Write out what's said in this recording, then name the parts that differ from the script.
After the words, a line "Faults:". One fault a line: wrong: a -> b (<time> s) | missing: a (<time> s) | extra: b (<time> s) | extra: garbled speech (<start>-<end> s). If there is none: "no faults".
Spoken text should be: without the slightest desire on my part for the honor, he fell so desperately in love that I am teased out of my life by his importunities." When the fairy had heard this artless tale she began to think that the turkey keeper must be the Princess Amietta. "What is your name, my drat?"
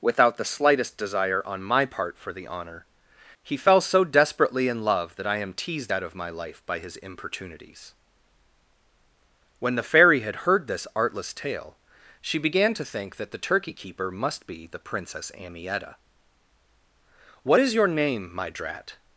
without the slightest desire on my part for the honor, he fell so desperately in love that I am teased out of my life by his importunities." When the fairy had heard this artless tale she began to think that the turkey keeper must be the Princess Amietta. "What is your name, my drat?"
Faults:
no faults